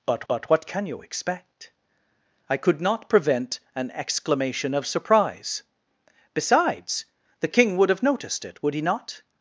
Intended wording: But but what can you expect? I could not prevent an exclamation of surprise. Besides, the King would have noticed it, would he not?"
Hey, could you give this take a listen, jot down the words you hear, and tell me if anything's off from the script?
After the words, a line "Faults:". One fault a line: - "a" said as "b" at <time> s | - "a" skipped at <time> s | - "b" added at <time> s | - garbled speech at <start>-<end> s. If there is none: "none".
But but what can you expect? I could not prevent an exclamation of surprise. Besides, the King would have noticed it, would he not?"
Faults:
none